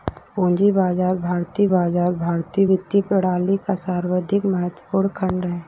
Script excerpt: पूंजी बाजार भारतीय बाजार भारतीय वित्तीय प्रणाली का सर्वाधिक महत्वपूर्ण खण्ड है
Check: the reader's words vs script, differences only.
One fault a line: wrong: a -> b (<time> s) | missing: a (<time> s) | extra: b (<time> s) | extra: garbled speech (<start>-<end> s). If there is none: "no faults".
no faults